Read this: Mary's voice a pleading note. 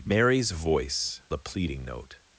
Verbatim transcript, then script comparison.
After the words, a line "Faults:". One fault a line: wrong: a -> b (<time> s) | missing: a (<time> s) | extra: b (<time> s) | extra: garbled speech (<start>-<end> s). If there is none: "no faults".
Mary's voice a pleading note.
Faults:
no faults